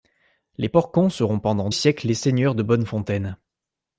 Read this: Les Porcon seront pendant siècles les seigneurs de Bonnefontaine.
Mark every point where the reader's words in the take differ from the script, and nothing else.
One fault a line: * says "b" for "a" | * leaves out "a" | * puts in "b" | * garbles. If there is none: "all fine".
all fine